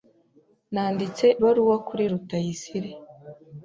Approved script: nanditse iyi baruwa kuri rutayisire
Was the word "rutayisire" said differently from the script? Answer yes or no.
no